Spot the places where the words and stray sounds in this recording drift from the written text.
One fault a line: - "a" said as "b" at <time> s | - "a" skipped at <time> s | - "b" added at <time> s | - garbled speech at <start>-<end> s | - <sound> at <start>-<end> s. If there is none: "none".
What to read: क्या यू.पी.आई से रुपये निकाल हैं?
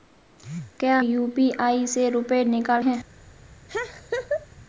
- laugh at 3.7-4.5 s